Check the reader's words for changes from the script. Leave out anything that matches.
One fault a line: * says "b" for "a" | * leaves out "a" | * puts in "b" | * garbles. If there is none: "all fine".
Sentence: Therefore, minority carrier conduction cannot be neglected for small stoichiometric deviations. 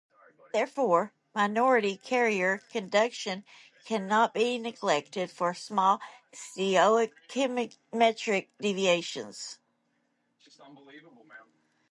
all fine